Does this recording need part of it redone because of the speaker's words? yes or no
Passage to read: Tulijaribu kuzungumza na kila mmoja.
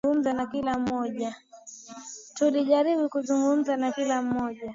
no